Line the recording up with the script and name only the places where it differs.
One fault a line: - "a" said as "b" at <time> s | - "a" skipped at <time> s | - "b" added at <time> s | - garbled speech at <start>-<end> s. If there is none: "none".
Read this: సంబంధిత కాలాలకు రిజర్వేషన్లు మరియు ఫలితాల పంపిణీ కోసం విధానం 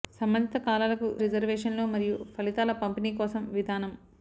none